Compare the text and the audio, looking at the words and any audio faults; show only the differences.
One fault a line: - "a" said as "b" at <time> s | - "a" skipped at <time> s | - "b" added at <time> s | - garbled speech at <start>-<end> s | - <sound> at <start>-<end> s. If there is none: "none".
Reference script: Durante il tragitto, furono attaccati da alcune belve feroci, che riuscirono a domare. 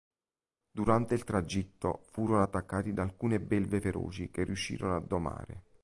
none